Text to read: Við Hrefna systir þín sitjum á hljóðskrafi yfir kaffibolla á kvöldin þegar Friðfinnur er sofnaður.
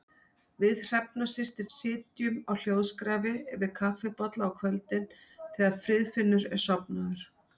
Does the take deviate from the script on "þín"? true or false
true